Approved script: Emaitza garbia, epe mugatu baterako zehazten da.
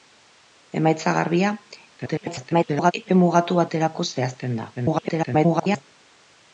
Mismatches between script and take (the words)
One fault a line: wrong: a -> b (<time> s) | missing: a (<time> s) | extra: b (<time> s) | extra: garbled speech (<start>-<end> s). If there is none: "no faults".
extra: garbled speech (2.0-2.9 s)
extra: garbled speech (4.8-5.8 s)